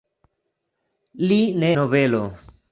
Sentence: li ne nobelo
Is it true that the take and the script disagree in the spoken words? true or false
false